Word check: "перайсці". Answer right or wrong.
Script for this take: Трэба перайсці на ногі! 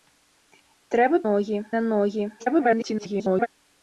wrong